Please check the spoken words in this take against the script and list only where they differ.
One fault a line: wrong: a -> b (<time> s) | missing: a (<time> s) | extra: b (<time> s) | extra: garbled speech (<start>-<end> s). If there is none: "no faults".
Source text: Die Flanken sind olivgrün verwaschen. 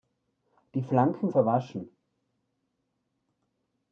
missing: sind olivgrün (1.3 s)